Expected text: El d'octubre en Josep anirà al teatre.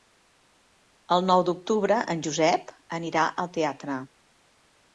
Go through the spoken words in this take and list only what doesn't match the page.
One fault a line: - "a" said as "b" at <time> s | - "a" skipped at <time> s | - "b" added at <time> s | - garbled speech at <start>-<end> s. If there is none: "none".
- "nou" added at 1.3 s